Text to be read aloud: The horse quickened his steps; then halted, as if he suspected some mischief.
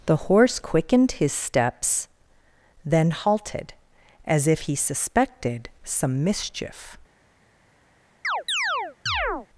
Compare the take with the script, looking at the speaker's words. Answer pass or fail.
pass